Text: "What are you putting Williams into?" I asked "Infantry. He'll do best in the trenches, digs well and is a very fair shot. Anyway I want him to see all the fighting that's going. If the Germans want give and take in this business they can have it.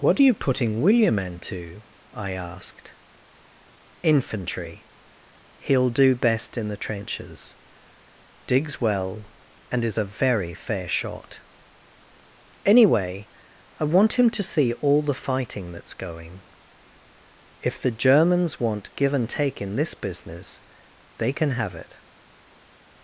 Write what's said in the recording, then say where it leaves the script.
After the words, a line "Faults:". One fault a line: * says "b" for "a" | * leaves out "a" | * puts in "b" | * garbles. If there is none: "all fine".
"What are you putting William into?" I asked "Infantry. He'll do best in the trenches, digs well and is a very fair shot. Anyway I want him to see all the fighting that's going. If the Germans want give and take in this business they can have it.
Faults:
* says "William" for "Williams"